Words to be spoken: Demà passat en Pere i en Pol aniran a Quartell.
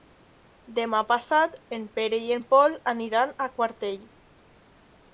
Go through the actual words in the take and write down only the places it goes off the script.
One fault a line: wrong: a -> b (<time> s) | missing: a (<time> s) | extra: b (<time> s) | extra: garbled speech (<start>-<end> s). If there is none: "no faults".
no faults